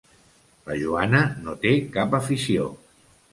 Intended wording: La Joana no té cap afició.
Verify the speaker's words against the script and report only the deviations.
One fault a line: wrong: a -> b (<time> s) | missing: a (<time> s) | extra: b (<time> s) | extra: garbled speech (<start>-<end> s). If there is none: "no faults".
no faults